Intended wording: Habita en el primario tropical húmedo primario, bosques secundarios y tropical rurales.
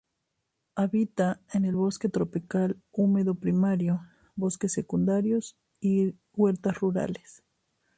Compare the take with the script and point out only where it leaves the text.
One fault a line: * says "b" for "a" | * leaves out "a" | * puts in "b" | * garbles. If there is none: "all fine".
* says "bosque" for "primario"
* says "huertas" for "tropical"